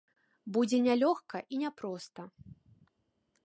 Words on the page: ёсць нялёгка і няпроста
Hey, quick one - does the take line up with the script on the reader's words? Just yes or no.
no